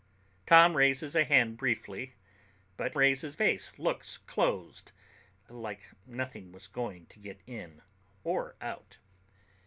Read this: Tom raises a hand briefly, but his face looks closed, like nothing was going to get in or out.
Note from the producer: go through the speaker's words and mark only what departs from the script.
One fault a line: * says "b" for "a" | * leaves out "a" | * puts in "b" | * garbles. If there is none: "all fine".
* says "raises" for "his"